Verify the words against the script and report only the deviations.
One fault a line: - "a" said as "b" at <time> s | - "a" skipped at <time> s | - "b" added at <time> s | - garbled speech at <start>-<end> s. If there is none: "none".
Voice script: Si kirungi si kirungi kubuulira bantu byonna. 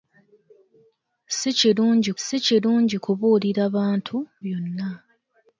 none